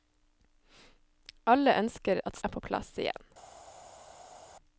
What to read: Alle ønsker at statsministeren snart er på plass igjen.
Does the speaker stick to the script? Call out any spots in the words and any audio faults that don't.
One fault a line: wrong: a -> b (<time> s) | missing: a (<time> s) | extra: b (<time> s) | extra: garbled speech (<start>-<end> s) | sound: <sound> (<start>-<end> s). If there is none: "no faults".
missing: statsministeren snart (2.4 s)